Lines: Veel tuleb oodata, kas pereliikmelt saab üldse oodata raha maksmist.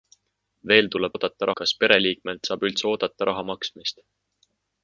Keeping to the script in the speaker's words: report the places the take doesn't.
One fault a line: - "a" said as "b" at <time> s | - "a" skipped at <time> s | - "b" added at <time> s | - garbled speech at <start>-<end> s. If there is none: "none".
none